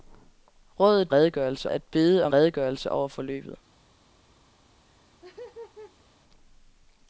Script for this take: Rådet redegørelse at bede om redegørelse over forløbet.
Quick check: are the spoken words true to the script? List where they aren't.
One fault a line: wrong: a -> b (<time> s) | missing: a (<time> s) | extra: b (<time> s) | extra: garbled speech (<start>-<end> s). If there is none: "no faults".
no faults